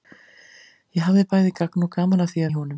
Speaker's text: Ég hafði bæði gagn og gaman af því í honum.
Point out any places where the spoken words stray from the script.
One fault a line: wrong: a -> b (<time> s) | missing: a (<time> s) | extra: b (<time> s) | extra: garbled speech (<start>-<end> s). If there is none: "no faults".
no faults